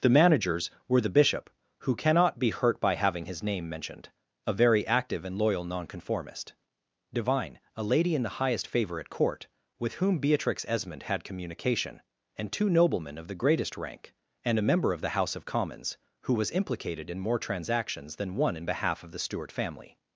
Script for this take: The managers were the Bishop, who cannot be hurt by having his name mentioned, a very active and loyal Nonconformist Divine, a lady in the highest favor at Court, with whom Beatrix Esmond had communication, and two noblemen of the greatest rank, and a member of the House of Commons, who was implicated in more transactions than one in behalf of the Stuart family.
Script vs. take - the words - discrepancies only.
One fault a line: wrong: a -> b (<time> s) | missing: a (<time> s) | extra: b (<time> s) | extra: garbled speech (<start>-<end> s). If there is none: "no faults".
no faults